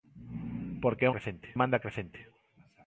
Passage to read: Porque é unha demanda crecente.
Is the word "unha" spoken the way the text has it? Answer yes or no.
no